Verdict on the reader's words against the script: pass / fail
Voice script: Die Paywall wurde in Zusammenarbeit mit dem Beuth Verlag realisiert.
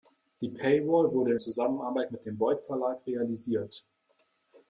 fail